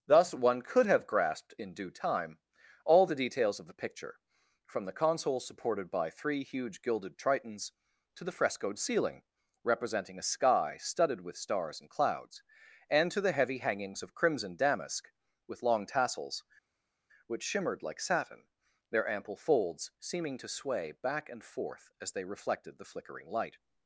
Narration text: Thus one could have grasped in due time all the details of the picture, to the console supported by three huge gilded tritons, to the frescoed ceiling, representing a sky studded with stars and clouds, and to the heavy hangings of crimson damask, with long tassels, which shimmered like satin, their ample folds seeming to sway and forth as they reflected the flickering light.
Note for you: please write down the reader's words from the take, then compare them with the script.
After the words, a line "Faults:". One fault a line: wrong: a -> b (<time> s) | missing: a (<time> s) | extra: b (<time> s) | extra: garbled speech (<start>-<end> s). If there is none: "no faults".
Thus one could have grasped in due time all the details of the picture, from the console supported by three huge gilded tritons, to the frescoed ceiling, representing a sky studded with stars and clouds, and to the heavy hangings of crimson damask, with long tassels, which shimmered like satin, their ample folds seeming to sway back and forth as they reflected the flickering light.
Faults:
wrong: to -> from (4.7 s)
extra: back (21.0 s)